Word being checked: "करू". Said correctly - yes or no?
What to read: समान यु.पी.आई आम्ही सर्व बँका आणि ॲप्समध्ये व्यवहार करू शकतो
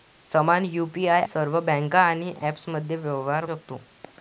no